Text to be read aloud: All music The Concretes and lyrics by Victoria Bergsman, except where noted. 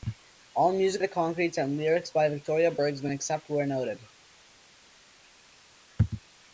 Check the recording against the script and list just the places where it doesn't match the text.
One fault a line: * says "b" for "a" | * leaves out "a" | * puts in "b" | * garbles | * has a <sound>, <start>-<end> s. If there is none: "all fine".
all fine